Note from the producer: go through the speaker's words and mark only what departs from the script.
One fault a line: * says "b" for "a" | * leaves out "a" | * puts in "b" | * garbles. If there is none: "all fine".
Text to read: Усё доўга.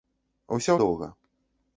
all fine